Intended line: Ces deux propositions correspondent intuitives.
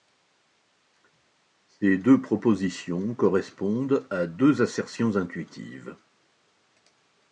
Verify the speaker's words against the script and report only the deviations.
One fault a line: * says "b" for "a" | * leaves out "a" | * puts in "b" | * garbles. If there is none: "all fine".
* puts in "à deux assertions"